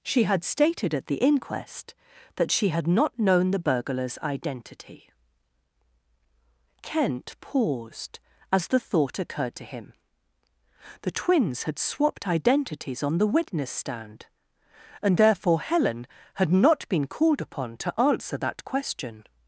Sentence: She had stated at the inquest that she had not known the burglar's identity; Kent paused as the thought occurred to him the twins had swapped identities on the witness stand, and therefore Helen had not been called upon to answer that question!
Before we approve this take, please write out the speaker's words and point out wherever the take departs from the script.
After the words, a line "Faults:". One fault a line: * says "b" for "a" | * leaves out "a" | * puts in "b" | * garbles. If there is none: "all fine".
She had stated at the inquest that she had not known the burglar's identity; Kent paused as the thought occurred to him the twins had swapped identities on the witness stand, and therefore Helen had not been called upon to answer that question!
Faults:
all fine